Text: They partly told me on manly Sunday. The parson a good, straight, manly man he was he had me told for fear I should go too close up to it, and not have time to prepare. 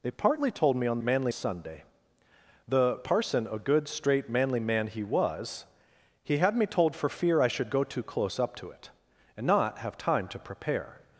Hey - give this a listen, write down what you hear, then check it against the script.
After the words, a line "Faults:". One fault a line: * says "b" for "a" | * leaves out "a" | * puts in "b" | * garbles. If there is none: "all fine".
They partly told me on manly Sunday. The parson a good, straight, manly man he was he had me told for fear I should go too close up to it, and not have time to prepare.
Faults:
all fine